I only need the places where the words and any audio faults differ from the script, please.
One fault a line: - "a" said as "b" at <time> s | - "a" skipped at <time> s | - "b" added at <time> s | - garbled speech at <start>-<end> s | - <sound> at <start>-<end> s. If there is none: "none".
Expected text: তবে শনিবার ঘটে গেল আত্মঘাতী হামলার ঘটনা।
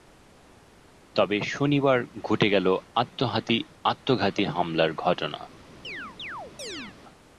- chirp at 5.8-7.0 s